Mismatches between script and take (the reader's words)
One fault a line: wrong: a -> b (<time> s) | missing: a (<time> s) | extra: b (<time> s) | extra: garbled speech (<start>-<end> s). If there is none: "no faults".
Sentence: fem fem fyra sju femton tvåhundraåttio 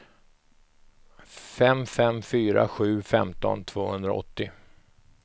no faults